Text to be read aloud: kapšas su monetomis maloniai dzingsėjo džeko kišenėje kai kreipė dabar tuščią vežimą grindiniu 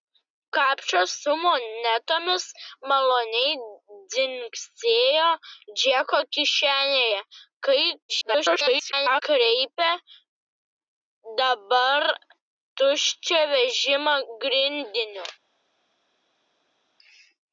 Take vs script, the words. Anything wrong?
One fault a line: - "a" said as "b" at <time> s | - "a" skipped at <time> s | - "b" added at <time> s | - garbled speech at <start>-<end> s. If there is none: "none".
- garbled speech at 8.1-9.2 s